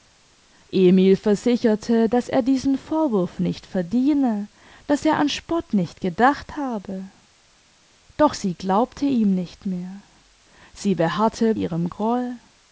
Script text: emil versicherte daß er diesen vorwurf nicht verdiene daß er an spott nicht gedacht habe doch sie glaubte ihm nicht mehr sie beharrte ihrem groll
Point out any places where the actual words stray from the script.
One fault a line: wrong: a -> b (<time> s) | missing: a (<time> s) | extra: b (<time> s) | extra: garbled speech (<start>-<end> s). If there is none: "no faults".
no faults